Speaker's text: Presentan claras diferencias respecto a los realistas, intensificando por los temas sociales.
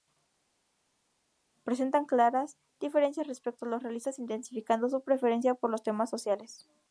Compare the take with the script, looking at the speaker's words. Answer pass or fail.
fail